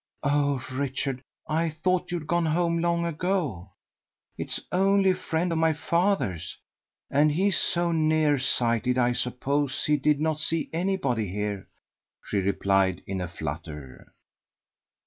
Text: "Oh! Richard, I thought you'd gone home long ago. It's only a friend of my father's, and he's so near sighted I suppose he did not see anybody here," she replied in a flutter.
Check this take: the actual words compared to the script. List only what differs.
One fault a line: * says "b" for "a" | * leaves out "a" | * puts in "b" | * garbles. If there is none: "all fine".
all fine